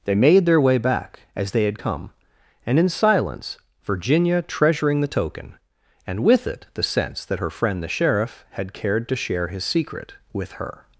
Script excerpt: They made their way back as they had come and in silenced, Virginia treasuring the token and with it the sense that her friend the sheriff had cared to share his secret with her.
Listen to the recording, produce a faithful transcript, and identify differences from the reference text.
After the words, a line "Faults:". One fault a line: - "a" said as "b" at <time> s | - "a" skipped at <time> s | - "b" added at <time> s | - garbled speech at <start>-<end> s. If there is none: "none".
They made their way back as they had come and in silence, Virginia treasuring the token and with it the sense that her friend the sheriff had cared to share his secret with her.
Faults:
- "silenced" said as "silence" at 2.9 s